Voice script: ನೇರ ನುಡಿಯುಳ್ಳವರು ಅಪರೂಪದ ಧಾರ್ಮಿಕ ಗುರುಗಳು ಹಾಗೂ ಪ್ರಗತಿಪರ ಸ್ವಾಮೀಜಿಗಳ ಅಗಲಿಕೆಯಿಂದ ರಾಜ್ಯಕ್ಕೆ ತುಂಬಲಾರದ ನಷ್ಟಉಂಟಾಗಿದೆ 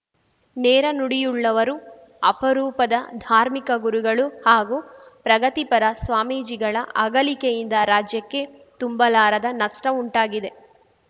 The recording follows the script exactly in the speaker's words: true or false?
true